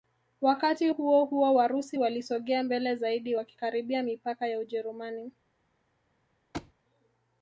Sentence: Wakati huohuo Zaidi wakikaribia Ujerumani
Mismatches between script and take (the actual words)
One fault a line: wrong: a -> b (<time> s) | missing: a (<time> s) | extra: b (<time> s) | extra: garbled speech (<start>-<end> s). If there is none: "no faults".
extra: Warusi walisogea mbele (1.5 s)
extra: mipaka ya (4.0 s)